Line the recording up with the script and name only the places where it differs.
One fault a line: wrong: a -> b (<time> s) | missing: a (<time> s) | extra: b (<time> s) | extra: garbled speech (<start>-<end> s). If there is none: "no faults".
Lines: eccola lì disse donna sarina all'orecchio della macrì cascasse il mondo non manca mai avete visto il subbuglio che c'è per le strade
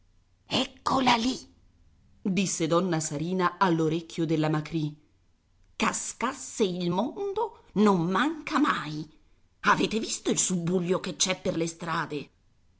no faults